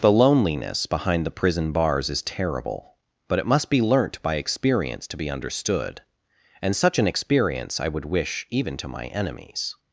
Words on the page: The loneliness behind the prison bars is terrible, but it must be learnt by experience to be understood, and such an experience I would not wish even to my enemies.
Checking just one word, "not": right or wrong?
wrong